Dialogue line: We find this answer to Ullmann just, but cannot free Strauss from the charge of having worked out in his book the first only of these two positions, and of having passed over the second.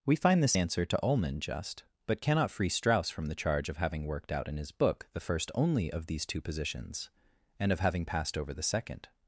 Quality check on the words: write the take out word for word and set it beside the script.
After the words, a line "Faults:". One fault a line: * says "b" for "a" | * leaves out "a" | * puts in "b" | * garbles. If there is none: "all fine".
We find this answer to Ullmann just, but cannot free Strauss from the charge of having worked out in his book the first only of these two positions, and of having passed over the second.
Faults:
all fine